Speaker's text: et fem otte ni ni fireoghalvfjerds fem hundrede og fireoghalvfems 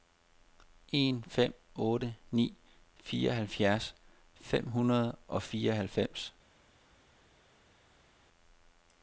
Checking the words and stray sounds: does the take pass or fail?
fail